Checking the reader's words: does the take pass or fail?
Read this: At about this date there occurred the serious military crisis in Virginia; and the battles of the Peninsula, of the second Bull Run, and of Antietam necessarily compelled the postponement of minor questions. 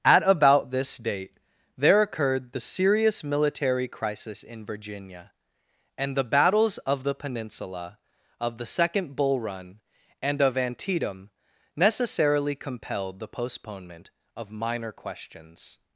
pass